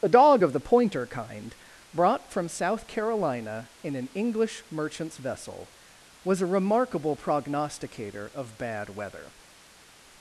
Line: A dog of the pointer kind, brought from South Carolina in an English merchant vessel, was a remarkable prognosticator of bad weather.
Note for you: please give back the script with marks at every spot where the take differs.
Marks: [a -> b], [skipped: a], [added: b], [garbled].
A dog of the pointer kind, brought from South Carolina in an English [merchant -> merchants] vessel, was a remarkable prognosticator of bad weather.